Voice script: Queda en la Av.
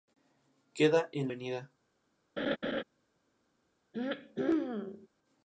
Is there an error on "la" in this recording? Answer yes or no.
yes